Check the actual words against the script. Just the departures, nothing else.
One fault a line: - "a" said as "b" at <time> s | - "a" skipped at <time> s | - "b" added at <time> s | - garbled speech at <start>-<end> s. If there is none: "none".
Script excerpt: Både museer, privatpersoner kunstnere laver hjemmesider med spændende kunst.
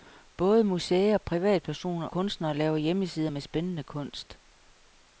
none